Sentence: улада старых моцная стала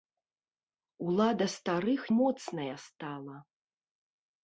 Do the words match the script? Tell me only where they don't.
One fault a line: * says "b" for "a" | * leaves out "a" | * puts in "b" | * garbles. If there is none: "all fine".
all fine